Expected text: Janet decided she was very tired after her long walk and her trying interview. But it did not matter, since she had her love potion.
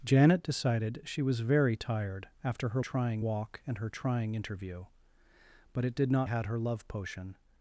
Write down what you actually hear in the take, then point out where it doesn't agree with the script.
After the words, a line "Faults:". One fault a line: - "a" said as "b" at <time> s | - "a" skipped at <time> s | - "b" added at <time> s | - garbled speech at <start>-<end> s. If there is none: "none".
Janet decided she was very tired after her trying walk and her trying interview. But it did not had her love potion.
Faults:
- "long" said as "trying" at 2.8 s
- "matter since she" skipped at 6.3 s